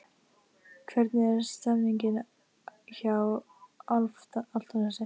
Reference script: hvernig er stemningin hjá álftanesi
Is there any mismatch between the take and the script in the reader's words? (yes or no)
no